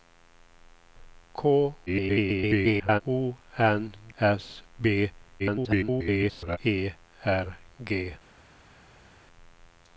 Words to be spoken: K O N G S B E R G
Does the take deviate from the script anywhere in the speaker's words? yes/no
yes